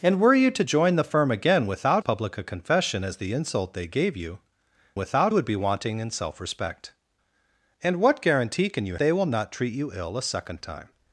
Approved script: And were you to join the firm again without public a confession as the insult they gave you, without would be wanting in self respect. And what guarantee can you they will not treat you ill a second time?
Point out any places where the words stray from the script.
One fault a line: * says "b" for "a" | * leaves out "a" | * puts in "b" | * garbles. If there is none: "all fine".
all fine